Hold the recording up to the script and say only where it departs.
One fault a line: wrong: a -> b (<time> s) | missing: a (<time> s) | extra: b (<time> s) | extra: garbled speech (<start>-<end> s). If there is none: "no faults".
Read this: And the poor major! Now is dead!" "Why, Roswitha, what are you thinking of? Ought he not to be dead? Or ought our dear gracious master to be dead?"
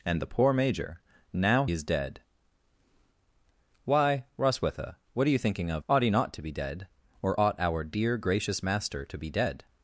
no faults